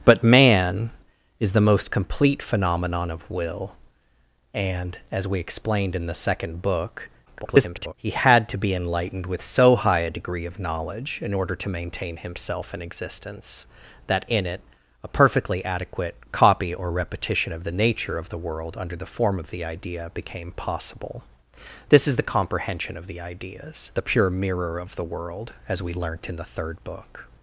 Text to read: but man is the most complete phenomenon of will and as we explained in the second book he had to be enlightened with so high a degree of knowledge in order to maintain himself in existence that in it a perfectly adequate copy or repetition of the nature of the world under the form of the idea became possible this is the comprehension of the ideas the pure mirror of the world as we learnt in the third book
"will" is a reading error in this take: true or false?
false